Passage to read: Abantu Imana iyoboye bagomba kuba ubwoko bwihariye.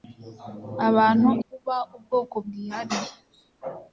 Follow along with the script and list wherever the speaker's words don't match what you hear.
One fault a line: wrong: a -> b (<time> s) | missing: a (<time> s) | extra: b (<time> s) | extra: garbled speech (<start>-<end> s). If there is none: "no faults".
missing: Imana iyoboye bagomba (1.3 s)